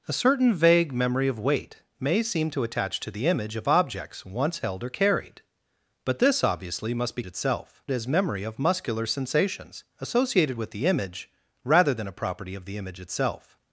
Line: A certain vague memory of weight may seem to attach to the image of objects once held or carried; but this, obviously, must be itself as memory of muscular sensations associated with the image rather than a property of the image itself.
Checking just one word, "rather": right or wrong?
right